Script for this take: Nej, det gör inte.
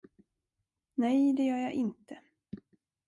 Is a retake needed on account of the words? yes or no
yes